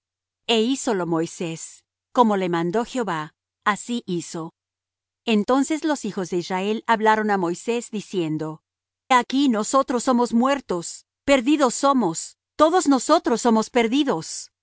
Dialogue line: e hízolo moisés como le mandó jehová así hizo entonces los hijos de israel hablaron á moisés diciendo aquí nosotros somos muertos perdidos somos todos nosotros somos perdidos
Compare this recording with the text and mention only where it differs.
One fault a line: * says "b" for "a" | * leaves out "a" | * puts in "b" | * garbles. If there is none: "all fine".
all fine